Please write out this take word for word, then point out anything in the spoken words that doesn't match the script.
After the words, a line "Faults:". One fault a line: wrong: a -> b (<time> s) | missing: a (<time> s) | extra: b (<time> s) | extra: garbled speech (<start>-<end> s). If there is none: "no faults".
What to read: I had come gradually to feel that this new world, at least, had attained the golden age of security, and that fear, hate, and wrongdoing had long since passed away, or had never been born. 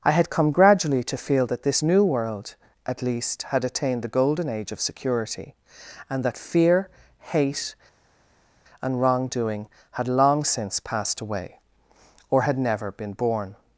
I had come gradually to feel that this new world, at least, had attained the golden age of security, and that fear, hate, and wrongdoing had long since passed away, or had never been born.
Faults:
no faults